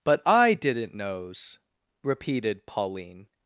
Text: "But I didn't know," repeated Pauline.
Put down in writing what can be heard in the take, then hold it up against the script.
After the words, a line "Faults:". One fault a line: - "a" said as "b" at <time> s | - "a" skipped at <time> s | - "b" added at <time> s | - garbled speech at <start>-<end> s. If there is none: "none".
"But I didn't knows," repeated Pauline.
Faults:
- "know" said as "knows" at 0.9 s